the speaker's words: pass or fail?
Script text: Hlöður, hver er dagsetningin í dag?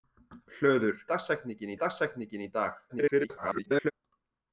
fail